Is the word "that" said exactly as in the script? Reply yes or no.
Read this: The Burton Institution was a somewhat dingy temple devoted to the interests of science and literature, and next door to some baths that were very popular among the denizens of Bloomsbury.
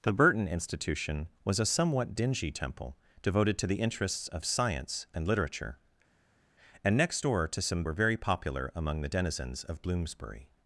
no